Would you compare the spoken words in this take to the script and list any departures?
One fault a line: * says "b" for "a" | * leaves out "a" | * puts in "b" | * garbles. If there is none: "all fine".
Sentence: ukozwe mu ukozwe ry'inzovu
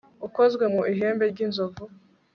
* says "ihembe" for "ukozwe"